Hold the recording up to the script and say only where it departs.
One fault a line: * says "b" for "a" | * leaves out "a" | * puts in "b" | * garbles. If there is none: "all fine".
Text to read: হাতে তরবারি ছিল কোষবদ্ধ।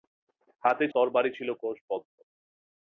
all fine